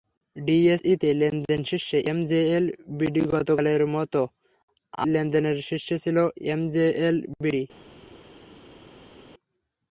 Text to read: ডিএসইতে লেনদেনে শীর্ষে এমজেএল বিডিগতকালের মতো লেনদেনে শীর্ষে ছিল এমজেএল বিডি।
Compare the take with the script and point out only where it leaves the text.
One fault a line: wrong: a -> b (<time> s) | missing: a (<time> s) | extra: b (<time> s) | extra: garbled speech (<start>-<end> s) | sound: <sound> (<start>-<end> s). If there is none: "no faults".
no faults